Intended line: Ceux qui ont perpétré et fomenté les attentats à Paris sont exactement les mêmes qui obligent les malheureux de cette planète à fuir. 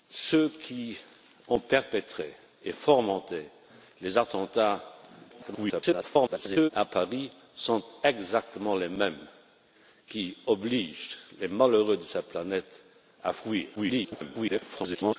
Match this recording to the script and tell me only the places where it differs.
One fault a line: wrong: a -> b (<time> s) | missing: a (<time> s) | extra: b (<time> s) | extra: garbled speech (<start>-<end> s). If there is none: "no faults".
extra: garbled speech (5.3-6.7 s)
extra: garbled speech (13.8-15.2 s)